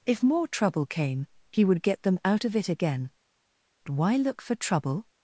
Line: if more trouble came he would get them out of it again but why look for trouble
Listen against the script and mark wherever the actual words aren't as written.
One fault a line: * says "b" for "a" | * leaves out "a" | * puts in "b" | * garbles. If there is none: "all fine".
* leaves out "but"